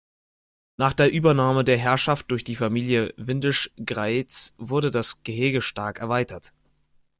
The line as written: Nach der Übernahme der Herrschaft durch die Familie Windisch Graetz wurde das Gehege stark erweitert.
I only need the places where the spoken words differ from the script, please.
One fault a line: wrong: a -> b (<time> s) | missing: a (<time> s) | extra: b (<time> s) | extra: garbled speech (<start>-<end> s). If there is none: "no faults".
no faults